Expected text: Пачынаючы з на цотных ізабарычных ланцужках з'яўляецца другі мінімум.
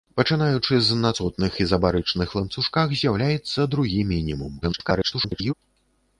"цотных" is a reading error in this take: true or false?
false